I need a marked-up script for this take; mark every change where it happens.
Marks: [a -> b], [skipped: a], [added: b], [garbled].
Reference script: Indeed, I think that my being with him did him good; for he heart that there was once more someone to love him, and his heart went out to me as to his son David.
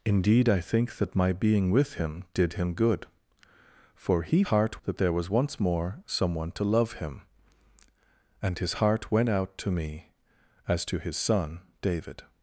Indeed, I think that my being with him did him good; for he heart that there was once more someone to love him, and his heart went out to me as to his son David.